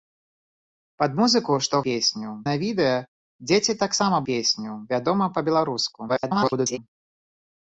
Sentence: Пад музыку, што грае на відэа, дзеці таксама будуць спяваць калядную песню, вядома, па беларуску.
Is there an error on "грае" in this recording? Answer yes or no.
yes